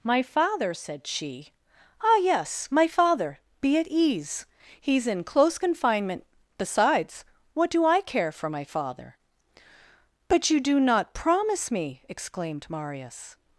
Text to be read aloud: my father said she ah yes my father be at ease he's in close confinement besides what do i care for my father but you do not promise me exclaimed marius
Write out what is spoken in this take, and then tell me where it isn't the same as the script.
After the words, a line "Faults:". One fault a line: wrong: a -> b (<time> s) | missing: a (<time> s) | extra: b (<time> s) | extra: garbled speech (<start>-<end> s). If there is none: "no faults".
my father said she ah yes my father be at ease he's in close confinement besides what do i care for my father but you do not promise me exclaimed marius
Faults:
no faults